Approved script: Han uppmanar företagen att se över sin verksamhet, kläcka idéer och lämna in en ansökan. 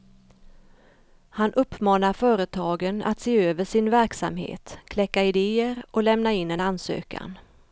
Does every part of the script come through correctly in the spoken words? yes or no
yes